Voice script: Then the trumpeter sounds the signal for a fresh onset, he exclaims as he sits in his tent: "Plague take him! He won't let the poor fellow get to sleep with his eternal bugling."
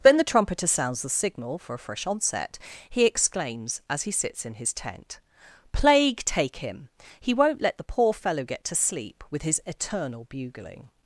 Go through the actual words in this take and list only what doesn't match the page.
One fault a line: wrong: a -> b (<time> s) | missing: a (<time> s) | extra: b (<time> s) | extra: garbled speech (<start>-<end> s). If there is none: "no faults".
no faults